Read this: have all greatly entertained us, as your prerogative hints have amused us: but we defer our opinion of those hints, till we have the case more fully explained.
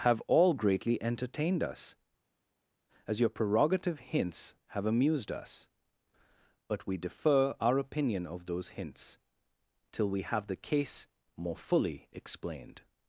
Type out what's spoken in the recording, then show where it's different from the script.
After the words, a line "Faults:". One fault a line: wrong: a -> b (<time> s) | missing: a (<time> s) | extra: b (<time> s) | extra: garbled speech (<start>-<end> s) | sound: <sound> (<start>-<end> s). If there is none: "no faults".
have all greatly entertained us, as your prerogative hints have amused us: but we defer our opinion of those hints, till we have the case more fully explained.
Faults:
no faults